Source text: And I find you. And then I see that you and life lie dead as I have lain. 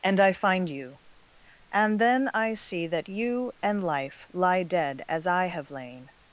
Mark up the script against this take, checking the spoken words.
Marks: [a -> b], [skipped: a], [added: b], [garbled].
And I find you. And then I see that you and life lie dead as I have lain.